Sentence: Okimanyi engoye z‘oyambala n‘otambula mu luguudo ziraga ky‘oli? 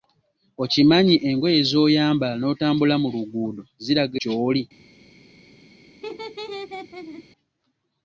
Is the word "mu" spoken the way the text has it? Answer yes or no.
yes